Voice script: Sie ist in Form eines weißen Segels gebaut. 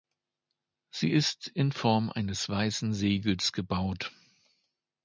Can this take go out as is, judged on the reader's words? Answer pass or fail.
pass